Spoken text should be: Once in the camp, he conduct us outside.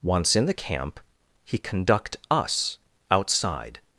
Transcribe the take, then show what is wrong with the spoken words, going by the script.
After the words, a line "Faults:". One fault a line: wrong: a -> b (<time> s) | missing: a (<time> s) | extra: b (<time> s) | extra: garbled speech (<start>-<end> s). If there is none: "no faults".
Once in the camp, he conduct us outside.
Faults:
no faults